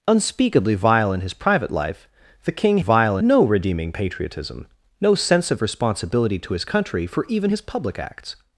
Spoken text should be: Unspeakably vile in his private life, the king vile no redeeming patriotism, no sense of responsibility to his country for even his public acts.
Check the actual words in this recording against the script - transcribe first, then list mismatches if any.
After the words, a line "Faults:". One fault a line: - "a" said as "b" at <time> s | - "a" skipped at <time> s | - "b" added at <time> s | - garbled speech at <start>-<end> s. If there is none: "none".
Unspeakably vile in his private life, the king vile no redeeming patriotism, no sense of responsibility to his country for even his public acts.
Faults:
none